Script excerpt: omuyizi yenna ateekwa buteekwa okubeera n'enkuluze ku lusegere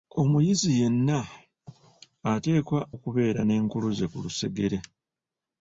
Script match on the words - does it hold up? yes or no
no